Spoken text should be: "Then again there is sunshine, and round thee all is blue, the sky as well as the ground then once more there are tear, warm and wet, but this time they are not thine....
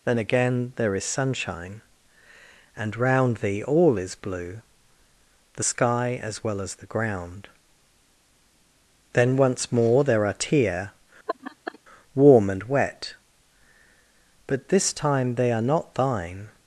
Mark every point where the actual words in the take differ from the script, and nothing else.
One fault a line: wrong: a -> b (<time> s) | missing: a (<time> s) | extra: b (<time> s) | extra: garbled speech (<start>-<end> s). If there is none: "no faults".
no faults